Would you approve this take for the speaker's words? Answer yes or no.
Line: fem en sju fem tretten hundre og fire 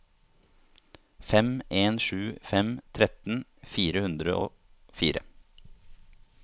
no